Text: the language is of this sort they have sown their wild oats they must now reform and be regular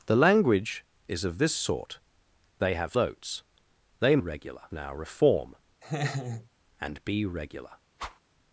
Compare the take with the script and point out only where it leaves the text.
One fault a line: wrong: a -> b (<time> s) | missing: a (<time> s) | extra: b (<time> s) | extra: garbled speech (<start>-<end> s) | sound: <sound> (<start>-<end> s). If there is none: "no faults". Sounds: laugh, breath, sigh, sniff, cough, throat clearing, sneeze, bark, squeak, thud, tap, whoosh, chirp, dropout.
missing: sown their wild (3.0 s)
wrong: must -> regular (4.2 s)
sound: laugh (5.8-6.5 s)
sound: whoosh (8.0-8.2 s)